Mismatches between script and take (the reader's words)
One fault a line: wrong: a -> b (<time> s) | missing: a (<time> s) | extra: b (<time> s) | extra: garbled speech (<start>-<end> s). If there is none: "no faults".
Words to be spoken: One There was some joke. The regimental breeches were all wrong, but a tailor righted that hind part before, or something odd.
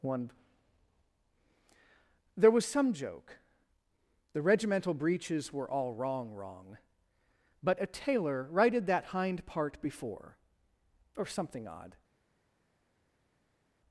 extra: wrong (6.3 s)